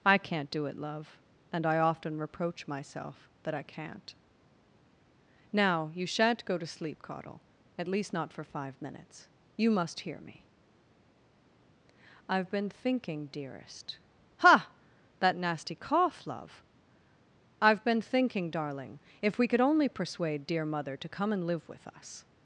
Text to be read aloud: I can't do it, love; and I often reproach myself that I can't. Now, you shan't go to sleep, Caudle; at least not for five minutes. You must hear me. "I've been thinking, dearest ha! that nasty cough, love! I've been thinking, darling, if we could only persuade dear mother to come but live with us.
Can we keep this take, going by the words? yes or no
no